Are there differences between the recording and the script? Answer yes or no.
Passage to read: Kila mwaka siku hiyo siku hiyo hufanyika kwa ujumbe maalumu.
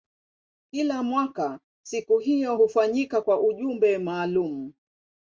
yes